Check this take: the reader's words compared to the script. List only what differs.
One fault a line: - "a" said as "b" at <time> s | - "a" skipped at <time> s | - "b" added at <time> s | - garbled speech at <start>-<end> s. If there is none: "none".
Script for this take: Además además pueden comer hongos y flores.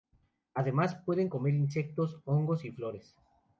- "además" skipped at 1.0 s
- "insectos" added at 1.5 s